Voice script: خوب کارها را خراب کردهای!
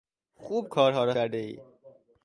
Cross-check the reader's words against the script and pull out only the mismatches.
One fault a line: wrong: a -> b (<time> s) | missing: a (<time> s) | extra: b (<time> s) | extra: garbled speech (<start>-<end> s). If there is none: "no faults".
missing: خراب (1.1 s)